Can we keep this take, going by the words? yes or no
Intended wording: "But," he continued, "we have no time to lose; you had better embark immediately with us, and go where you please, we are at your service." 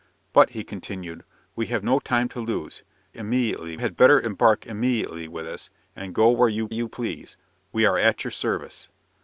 no